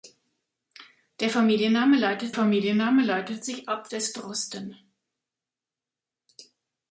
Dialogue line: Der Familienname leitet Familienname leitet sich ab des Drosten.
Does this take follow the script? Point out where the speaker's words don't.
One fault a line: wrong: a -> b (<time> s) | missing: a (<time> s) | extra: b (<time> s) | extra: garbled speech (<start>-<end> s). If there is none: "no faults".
no faults